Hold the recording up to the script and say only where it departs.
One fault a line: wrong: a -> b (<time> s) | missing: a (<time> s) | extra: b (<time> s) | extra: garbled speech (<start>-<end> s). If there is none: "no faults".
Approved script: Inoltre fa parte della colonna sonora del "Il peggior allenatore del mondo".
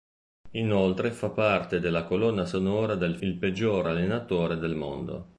no faults